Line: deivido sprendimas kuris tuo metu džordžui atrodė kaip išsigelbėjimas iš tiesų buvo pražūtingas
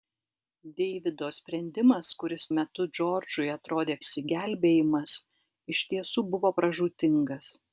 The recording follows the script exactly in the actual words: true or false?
false